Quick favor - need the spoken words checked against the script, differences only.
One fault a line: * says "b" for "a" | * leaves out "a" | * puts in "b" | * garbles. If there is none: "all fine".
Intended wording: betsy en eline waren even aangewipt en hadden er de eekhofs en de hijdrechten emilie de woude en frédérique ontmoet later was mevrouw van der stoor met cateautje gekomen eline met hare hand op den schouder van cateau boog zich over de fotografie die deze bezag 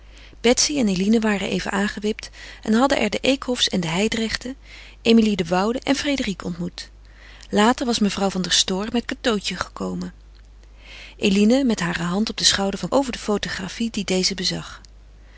* leaves out "cateau boog zich"